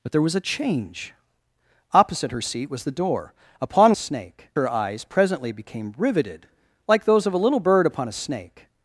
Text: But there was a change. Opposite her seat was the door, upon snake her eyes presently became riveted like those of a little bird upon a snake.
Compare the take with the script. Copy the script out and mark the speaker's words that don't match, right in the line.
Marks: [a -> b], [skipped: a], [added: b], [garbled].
But there was a change. Opposite her seat was the door, upon snake her eyes presently became riveted like those of a little bird upon a snake.